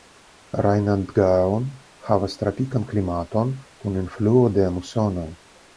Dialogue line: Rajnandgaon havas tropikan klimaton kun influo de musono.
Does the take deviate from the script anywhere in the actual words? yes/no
no